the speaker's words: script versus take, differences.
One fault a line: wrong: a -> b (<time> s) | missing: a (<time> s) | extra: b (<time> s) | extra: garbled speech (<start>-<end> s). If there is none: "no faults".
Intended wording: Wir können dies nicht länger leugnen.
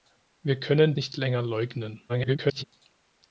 missing: dies (0.9 s)
extra: garbled speech (2.1-2.6 s)